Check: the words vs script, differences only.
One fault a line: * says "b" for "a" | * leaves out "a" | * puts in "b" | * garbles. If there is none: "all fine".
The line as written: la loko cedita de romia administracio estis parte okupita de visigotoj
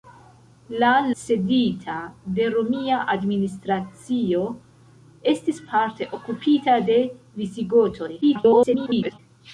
* leaves out "loko"
* garbles